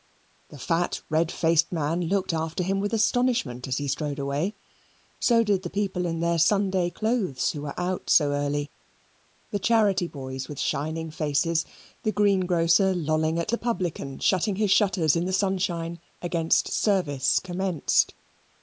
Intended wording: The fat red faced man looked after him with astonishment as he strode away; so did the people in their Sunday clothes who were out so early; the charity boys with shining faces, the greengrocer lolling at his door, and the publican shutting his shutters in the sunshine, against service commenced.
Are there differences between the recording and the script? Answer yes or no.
yes